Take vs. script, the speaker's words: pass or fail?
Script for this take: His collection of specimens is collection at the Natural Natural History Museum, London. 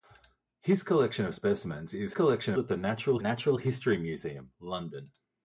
pass